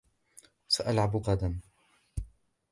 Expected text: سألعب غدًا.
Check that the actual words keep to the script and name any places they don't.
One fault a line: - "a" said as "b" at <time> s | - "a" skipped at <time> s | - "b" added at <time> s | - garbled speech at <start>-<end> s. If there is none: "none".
none